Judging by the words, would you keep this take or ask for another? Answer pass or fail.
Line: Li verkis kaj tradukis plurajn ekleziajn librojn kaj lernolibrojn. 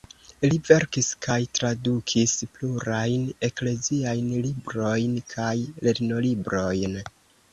pass